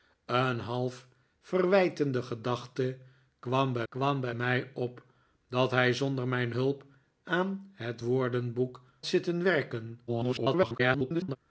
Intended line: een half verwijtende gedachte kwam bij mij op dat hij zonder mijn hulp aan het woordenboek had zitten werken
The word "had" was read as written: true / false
false